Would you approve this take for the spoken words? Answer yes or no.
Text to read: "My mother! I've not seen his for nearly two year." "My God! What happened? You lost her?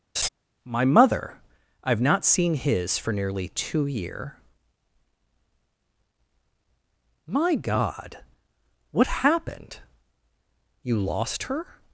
yes